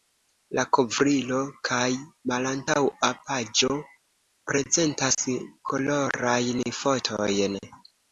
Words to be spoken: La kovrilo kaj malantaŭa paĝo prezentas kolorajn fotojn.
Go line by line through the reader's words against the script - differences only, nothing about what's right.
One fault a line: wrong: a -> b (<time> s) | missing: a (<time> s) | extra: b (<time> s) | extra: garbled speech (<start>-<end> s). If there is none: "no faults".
no faults